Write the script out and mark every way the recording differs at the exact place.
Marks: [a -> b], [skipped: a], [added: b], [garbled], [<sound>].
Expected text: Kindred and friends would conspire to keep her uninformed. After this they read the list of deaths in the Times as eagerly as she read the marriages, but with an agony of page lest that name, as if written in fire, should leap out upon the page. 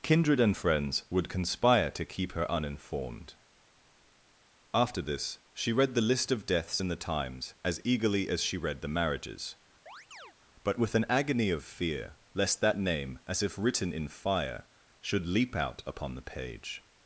Kindred and friends would conspire to keep her uninformed. After this [they -> she] read the list of deaths in the Times as eagerly as she read the marriages, [chirp] but with an agony of [page -> fear] lest that name, as if written in fire, should leap out upon the page.